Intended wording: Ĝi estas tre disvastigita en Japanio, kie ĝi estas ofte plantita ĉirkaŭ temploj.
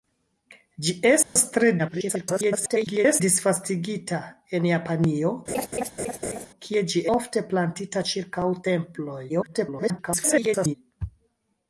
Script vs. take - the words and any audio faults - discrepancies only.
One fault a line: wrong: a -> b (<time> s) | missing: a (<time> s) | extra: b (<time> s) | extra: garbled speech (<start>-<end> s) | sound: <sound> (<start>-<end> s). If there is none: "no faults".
sound: dropout (1.2-1.4 s)
extra: garbled speech (1.8-3.2 s)
sound: laugh (5.5-6.5 s)
missing: estas (7.0 s)
extra: garbled speech (9.3-10.7 s)